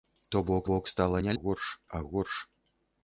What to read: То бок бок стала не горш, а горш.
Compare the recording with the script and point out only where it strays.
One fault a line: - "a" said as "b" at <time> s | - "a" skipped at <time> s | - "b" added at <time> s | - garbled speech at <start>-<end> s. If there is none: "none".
none